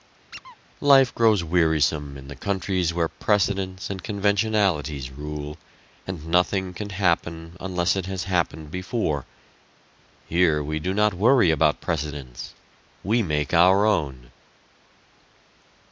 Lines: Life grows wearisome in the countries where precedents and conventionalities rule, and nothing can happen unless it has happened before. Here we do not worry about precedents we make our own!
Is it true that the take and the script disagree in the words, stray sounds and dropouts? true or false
true